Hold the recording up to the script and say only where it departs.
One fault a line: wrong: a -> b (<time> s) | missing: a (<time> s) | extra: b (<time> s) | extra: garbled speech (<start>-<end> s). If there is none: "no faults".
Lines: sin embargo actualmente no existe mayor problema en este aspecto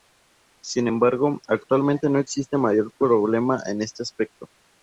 no faults